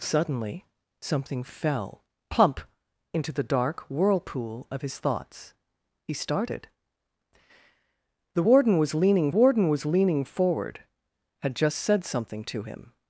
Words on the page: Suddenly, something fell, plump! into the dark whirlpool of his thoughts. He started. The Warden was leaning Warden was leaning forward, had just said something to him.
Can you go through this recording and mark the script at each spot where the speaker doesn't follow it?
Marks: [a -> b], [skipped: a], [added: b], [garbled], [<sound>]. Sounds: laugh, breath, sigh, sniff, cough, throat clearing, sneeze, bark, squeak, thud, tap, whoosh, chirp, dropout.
Suddenly, something fell, plump! into the dark whirlpool of his thoughts. He started. The Warden was leaning Warden was leaning forward, had just said something to him.